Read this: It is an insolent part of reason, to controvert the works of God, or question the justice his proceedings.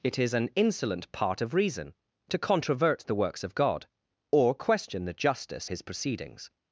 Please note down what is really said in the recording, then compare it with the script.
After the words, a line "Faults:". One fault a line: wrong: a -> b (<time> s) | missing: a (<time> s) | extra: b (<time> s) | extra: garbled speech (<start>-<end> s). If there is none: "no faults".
It is an insolent part of reason, to controvert the works of God, or question the justice his proceedings.
Faults:
no faults